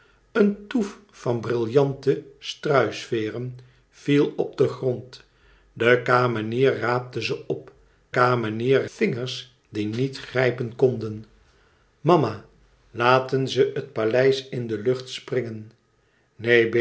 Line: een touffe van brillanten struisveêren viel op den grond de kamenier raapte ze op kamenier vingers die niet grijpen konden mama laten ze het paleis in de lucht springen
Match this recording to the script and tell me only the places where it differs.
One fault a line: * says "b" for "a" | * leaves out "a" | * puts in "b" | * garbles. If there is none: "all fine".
all fine